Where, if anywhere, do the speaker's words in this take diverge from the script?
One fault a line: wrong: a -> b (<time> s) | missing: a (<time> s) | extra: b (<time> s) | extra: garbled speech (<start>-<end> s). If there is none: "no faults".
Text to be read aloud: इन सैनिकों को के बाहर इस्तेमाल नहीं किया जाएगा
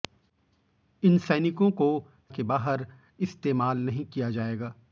no faults